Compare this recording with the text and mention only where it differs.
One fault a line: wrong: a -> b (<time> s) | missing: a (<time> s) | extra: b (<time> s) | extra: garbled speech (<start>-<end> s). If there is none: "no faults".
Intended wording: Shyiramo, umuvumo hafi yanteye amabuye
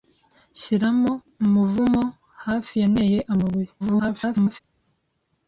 extra: garbled speech (3.8-4.6 s)